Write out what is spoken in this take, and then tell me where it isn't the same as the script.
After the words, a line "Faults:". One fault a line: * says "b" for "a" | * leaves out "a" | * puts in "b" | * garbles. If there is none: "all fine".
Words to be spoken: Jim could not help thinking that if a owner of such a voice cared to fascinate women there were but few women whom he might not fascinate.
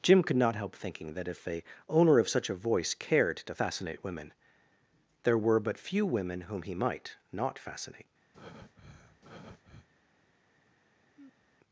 Jim could not help thinking that if a owner of such a voice cared to fascinate women there were but few women whom he might not fascinate.
Faults:
all fine